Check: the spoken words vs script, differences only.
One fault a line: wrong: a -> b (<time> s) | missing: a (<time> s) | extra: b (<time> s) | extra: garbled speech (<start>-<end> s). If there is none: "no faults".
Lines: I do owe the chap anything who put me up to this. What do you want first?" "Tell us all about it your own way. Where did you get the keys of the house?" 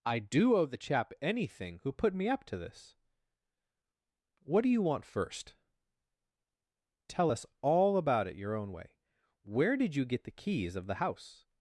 no faults